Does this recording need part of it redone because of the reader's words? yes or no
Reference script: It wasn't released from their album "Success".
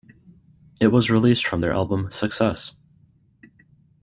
yes